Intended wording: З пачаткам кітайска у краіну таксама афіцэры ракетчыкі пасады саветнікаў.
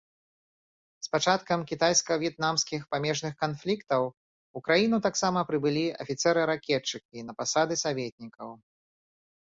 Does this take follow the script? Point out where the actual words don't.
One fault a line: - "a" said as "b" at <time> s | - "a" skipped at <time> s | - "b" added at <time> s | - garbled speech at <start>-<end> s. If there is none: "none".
- "в'етнамскіх памежных канфліктаў" added at 2.2 s
- "прыбылі" added at 5.5 s
- "на" added at 7.3 s